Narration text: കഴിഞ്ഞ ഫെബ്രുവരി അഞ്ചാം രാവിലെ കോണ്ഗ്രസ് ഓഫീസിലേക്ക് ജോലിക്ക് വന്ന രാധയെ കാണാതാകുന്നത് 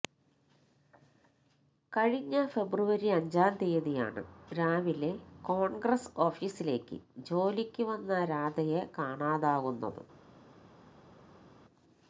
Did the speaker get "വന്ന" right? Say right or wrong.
right